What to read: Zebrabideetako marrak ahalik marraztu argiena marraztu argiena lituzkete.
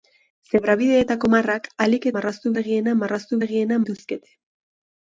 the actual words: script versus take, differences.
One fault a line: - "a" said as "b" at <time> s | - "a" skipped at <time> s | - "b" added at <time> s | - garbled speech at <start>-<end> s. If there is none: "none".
none